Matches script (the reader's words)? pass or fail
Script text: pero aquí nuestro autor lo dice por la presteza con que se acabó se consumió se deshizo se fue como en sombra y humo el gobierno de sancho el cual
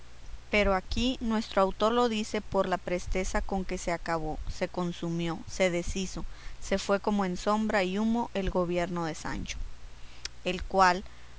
pass